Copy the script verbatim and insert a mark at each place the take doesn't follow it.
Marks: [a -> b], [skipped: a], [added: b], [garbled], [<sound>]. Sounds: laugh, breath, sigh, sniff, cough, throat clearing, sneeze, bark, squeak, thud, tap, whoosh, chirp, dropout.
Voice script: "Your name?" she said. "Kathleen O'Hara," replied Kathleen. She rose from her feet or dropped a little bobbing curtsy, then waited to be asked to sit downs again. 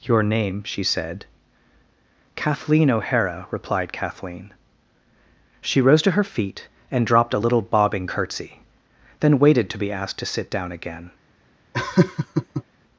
"Your name?" she said. "Kathleen O'Hara," replied Kathleen. She rose [from -> to] her feet [or -> and] dropped a little bobbing curtsy, then waited to be asked to sit [downs -> down] again. [laugh]